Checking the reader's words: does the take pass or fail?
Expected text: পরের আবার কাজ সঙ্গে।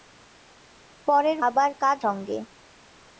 pass